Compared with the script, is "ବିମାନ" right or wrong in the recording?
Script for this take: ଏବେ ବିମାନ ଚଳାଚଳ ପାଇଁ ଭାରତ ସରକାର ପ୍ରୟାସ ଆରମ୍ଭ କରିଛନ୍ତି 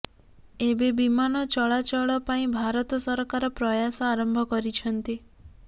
right